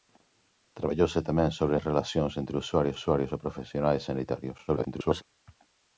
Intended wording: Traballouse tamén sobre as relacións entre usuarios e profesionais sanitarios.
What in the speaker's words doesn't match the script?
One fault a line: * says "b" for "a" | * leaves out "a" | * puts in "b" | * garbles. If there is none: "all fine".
* puts in "usuarios"
* garbles